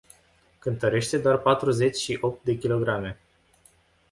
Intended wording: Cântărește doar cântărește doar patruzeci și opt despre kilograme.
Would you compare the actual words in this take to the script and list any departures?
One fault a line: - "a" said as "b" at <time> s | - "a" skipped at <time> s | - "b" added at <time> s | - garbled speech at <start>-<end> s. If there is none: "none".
- "cântărește doar" skipped at 1.4 s
- "despre" said as "de" at 2.4 s